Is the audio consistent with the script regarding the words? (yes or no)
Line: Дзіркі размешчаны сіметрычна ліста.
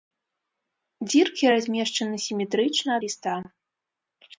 yes